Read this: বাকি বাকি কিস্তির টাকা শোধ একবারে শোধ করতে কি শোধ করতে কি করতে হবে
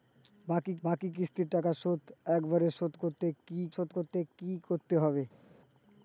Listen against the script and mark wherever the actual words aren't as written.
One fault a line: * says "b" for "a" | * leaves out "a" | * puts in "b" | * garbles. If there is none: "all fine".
all fine